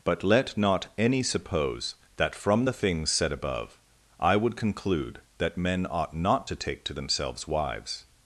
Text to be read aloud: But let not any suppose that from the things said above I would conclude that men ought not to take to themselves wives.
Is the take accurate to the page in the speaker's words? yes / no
yes